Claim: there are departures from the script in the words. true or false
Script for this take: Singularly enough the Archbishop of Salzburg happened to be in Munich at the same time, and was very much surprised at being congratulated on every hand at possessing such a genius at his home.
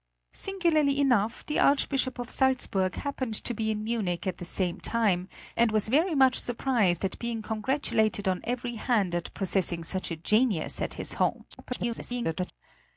true